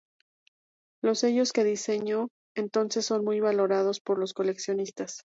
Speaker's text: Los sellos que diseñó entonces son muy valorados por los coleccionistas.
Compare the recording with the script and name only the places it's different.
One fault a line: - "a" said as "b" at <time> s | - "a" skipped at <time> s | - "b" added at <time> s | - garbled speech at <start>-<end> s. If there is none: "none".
none